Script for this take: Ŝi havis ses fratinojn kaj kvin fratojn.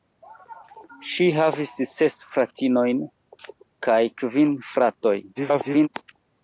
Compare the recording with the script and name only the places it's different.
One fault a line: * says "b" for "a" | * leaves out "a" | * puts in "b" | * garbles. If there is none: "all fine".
* garbles